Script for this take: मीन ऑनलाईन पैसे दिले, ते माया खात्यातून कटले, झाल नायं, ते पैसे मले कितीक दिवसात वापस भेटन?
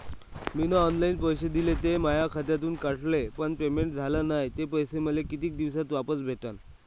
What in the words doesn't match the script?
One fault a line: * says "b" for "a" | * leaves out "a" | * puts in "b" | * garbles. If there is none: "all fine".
* puts in "पण पेमेंट"